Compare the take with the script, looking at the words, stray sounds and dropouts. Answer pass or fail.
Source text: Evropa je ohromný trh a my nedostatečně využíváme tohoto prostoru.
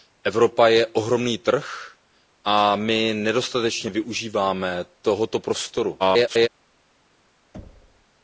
fail